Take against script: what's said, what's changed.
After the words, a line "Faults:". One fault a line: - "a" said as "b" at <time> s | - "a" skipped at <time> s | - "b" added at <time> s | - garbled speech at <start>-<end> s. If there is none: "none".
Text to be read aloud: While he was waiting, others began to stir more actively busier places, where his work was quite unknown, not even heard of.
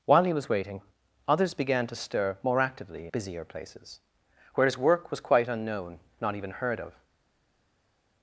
While he was waiting, others began to stir more actively busier places, where his work was quite unknown, not even heard of.
Faults:
none